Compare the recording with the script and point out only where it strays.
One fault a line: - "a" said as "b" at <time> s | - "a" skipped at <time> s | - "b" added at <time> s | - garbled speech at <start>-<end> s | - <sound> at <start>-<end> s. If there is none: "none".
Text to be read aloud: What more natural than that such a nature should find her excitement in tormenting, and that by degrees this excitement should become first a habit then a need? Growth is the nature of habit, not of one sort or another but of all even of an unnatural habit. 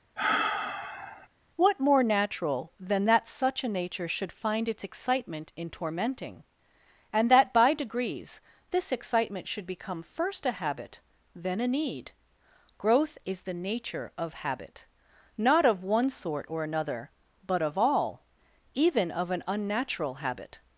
- sigh at 0.2-1.3 s
- "her" said as "its" at 4.7 s